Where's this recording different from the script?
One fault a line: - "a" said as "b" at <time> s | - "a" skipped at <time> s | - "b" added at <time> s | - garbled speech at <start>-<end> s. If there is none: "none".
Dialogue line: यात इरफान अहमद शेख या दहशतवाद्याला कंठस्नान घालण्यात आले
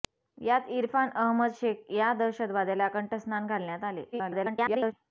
- garbled speech at 4.1-4.9 s